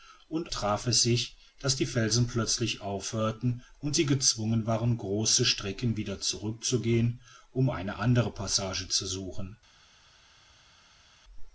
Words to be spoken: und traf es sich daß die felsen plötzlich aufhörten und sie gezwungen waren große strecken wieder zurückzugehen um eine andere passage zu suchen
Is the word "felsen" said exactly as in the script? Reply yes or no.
yes